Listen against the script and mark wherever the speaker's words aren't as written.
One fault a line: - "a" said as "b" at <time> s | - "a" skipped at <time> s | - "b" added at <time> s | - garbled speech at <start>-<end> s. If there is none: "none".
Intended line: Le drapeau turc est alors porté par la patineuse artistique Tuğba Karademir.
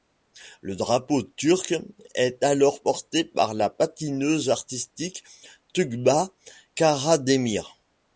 none